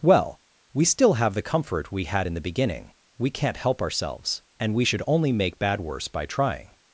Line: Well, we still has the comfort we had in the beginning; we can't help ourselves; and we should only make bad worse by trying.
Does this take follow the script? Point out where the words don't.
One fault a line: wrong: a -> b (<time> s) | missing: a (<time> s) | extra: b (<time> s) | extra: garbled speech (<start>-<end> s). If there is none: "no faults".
wrong: has -> have (1.1 s)